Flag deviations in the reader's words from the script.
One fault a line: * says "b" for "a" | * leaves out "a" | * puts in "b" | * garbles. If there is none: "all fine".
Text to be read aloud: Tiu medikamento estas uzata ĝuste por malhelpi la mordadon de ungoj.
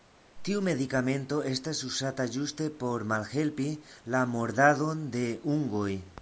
all fine